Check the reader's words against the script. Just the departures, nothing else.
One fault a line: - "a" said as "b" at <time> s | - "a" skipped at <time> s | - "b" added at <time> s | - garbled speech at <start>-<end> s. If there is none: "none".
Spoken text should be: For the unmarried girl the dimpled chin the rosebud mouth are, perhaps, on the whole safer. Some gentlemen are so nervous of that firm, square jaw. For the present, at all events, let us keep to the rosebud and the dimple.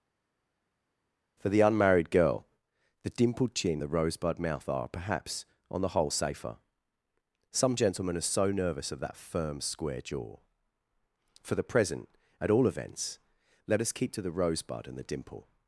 none